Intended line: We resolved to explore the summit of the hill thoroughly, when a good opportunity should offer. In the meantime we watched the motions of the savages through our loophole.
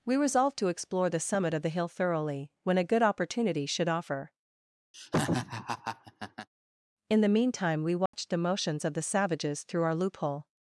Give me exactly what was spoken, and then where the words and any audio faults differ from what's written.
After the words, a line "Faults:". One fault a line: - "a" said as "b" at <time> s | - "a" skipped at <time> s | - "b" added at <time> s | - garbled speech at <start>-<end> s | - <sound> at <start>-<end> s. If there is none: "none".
We resolved to explore the summit of the hill thoroughly, when a good opportunity should offer. In the meantime we watched the motions of the savages through our loophole.
Faults:
- laugh at 4.9-6.5 s
- dropout at 8.1-8.1 s